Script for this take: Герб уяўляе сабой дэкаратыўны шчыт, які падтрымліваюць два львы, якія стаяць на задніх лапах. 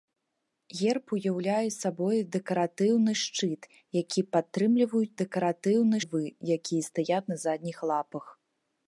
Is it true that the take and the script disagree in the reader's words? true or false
true